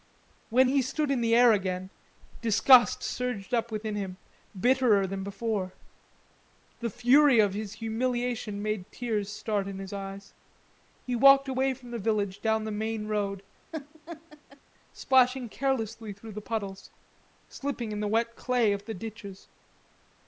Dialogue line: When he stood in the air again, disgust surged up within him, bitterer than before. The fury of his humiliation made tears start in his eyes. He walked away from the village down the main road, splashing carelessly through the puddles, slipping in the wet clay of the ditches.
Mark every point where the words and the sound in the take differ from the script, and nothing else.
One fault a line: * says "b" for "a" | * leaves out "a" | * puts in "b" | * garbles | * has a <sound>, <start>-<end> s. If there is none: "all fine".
* has a laugh, 13.7-14.6 s